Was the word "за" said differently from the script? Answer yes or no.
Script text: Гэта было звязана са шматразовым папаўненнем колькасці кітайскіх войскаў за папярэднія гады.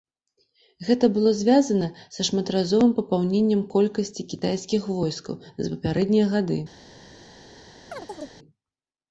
no